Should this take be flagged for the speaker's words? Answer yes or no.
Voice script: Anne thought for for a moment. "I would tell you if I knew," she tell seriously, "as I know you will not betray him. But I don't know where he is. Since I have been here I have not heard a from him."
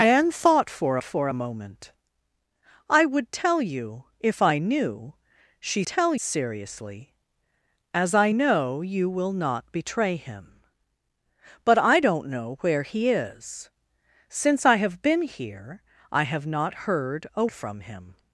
no